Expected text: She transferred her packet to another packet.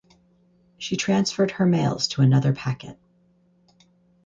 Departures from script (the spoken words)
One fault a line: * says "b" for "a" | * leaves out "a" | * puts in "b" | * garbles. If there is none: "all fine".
* says "mails" for "packet"